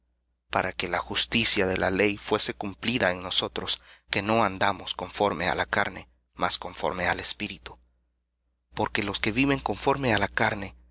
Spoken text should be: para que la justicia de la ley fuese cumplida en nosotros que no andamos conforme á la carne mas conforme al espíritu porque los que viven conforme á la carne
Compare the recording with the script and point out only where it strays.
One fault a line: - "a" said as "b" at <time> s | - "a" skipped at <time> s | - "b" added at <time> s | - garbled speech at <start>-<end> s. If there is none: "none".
none